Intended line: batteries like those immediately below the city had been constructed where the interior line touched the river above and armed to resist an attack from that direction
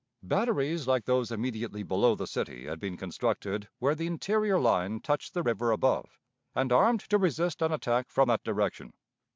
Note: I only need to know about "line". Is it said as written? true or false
true